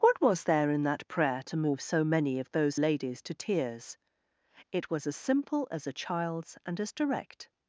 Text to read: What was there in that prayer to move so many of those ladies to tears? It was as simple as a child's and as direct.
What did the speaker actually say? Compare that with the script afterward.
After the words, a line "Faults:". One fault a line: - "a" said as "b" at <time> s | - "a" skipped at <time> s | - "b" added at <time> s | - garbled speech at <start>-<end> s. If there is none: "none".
What was there in that prayer to move so many of those ladies to tears? It was as simple as a child's and as direct.
Faults:
none